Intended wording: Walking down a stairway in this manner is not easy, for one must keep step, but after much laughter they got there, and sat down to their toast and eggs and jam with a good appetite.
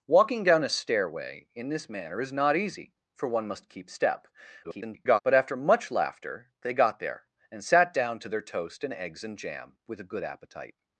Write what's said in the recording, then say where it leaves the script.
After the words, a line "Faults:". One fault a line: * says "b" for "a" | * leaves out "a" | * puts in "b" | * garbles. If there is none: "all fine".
Walking down a stairway in this manner is not easy, for one must keep step, [garbled] but after much laughter they got there, and sat down to their toast and eggs and jam with a good appetite.
Faults:
* garbles